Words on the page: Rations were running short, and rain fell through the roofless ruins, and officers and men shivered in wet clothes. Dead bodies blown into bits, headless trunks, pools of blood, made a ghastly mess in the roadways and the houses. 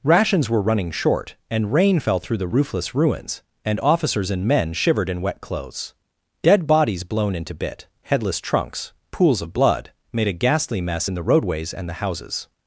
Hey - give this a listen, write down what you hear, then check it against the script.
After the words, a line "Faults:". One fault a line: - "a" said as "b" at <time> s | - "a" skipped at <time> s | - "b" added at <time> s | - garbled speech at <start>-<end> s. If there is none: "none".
Rations were running short, and rain fell through the roofless ruins, and officers and men shivered in wet clothes. Dead bodies blown into bit, headless trunks, pools of blood, made a ghastly mess in the roadways and the houses.
Faults:
- "bits" said as "bit" at 7.5 s